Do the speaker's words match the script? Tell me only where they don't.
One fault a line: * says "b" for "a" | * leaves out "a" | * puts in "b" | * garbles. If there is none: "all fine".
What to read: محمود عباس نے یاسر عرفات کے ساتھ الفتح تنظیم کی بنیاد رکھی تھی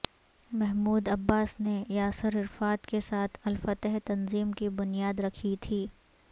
all fine